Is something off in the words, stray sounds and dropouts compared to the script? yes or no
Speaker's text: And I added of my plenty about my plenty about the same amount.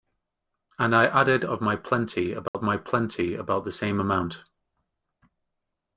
yes